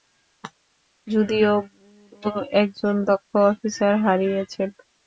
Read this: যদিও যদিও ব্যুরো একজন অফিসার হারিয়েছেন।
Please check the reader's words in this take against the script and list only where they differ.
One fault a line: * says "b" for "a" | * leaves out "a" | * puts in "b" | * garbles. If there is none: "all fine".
* leaves out "যদিও"
* puts in "দক্ষ"